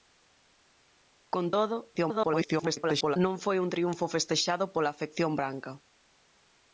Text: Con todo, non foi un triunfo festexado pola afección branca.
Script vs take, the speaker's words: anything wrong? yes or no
yes